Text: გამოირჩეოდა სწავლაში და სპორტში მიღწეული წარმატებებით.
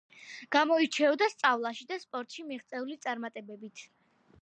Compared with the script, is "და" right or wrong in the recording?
right